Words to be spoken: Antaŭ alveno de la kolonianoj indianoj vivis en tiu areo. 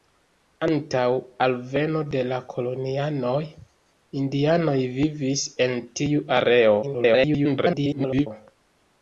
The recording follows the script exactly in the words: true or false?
false